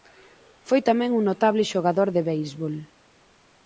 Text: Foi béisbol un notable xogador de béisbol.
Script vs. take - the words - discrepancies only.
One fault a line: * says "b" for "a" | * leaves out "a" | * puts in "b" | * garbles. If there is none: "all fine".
* says "tamén" for "béisbol"